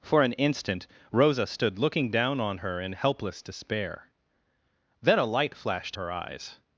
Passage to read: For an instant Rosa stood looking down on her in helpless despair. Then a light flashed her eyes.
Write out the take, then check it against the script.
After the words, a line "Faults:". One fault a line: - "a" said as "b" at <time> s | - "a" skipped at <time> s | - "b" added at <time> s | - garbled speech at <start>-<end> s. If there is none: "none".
For an instant Rosa stood looking down on her in helpless despair. Then a light flashed her eyes.
Faults:
none